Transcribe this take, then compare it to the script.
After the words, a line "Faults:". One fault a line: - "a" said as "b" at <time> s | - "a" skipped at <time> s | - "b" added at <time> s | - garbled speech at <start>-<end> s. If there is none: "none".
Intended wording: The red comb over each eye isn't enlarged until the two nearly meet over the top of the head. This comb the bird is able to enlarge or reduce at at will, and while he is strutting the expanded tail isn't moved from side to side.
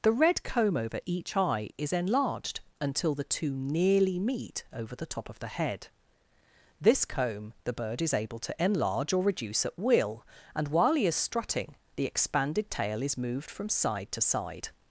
The red comb over each eye is enlarged until the two nearly meet over the top of the head. This comb the bird is able to enlarge or reduce at will, and while he is strutting the expanded tail is moved from side to side.
Faults:
- "isn't" said as "is" at 1.8 s
- "at" skipped at 9.8 s
- "isn't" said as "is" at 13.0 s